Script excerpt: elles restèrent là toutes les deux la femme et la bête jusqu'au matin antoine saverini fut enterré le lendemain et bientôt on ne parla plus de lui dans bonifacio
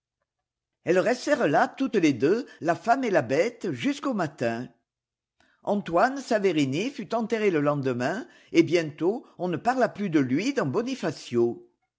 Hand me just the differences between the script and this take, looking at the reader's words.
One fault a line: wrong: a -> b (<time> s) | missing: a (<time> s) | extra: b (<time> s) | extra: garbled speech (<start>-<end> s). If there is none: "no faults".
no faults